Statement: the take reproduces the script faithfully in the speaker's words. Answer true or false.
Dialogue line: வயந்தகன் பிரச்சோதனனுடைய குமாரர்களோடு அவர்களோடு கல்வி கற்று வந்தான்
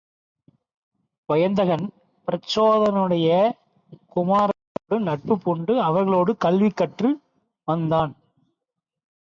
false